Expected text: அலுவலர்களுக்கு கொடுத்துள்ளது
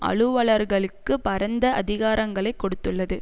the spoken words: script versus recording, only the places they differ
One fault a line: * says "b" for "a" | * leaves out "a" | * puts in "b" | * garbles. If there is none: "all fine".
* puts in "பரந்த அதிகாரங்களை"